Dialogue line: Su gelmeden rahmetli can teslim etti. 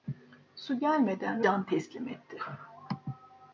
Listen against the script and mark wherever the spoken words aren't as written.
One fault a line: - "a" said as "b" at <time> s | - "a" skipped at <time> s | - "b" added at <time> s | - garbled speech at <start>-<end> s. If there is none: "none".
- "rahmetli" skipped at 1.4 s